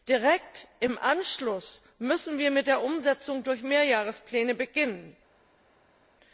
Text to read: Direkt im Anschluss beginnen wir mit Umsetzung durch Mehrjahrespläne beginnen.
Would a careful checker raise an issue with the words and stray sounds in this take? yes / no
yes